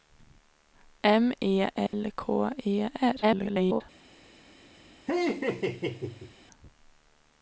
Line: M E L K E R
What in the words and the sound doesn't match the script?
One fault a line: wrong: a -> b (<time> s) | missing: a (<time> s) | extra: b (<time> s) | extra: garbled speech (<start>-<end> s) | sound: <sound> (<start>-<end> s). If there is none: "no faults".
sound: dropout (1.9-1.9 s)
extra: garbled speech (3.2-3.8 s)
sound: laugh (5.1-6.3 s)